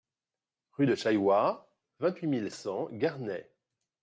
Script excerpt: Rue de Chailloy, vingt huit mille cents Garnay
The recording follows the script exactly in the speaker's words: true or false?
true